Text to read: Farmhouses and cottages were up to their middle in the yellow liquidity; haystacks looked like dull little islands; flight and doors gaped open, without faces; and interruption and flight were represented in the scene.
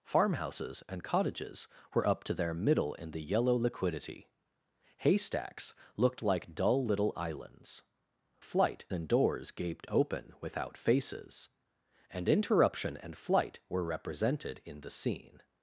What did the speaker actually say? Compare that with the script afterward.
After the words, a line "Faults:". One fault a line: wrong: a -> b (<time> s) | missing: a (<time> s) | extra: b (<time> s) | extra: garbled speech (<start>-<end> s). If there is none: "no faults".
Farmhouses and cottages were up to their middle in the yellow liquidity; haystacks looked like dull little islands; flight and doors gaped open, without faces; and interruption and flight were represented in the scene.
Faults:
no faults